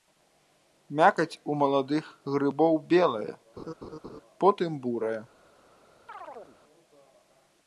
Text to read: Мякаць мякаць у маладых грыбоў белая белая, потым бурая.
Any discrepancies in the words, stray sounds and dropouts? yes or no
yes